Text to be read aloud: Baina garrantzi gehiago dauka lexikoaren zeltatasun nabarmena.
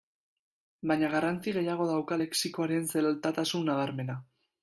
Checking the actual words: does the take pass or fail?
pass